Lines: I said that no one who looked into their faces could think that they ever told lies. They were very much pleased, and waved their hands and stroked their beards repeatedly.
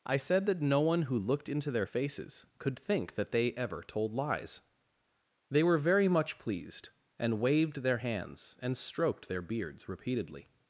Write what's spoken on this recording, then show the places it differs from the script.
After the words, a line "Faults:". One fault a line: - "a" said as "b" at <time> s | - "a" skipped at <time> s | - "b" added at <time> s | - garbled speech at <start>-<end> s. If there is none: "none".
I said that no one who looked into their faces could think that they ever told lies. They were very much pleased, and waved their hands and stroked their beards repeatedly.
Faults:
none